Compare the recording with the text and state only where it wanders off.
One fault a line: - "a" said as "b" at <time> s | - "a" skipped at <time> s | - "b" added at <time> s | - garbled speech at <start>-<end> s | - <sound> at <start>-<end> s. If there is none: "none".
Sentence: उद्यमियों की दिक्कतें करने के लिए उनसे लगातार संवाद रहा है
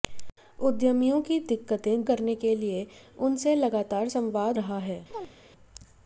- chirp at 5.1-5.3 s